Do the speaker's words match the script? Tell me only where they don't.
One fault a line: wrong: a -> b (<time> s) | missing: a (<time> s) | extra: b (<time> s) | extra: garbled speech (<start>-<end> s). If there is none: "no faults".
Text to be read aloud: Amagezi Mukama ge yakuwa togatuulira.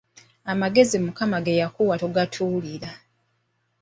no faults